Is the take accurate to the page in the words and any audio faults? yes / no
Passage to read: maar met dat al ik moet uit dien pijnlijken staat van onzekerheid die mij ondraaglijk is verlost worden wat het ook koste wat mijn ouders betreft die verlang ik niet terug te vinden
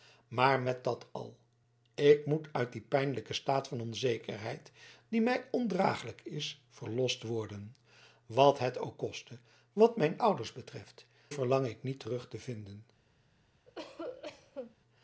no